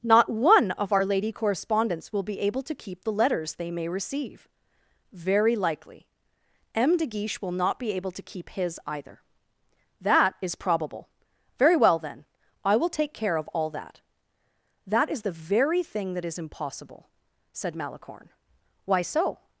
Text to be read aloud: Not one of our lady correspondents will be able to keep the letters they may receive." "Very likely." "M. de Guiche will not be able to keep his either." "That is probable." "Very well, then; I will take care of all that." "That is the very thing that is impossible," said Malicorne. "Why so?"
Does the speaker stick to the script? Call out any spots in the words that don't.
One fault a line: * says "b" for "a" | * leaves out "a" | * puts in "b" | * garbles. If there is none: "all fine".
all fine